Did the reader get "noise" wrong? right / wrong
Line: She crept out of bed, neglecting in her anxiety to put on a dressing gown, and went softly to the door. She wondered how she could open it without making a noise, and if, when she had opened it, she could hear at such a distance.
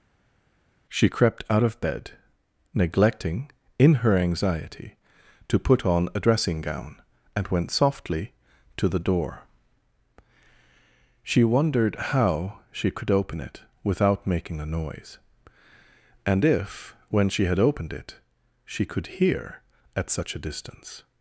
right